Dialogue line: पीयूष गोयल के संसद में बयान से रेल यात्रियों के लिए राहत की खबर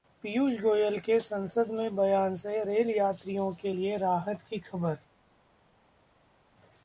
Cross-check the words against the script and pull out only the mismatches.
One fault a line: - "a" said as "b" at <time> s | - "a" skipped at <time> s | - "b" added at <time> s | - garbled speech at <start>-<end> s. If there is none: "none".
none